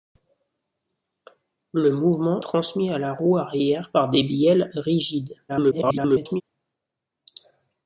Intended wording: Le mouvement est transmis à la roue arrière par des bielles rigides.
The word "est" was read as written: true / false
false